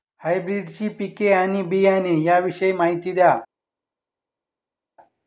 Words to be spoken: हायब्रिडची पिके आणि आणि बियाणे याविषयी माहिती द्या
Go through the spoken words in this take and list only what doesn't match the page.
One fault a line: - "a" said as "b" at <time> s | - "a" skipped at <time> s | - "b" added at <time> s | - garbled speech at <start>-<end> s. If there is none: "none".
- "आणि" skipped at 1.6 s